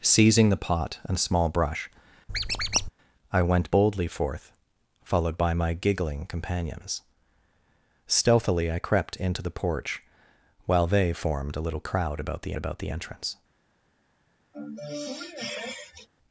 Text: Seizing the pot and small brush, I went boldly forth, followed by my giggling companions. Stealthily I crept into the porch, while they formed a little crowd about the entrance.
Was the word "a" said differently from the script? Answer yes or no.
no